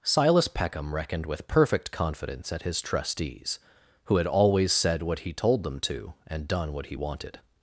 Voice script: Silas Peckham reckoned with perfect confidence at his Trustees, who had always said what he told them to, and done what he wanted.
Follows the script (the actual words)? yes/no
yes